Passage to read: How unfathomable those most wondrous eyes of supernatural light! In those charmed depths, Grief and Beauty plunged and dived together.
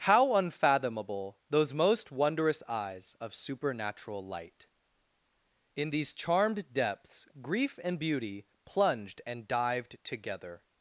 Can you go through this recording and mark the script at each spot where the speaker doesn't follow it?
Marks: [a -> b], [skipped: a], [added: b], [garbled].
How unfathomable those most wondrous eyes of supernatural light! In [those -> these] charmed depths, Grief and Beauty plunged and dived together.